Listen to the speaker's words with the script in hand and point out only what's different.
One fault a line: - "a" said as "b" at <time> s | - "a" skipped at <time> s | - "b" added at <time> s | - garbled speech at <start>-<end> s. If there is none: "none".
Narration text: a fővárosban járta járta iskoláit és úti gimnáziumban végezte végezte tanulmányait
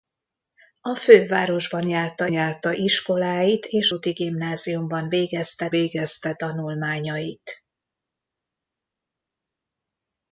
none